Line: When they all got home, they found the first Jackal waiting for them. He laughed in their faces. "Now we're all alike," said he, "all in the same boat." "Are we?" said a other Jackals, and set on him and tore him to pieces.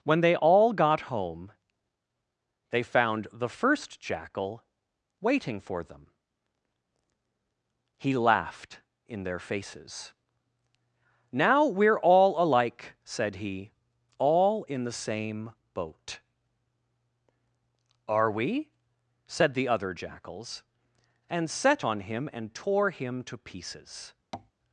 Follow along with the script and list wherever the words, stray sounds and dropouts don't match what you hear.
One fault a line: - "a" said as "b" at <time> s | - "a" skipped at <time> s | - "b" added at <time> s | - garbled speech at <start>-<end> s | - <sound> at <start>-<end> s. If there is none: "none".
- "a" said as "the" at 19.5 s
- tap at 24.3-24.5 s